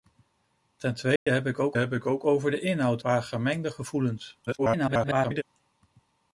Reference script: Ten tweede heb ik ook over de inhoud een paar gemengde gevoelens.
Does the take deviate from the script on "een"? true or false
true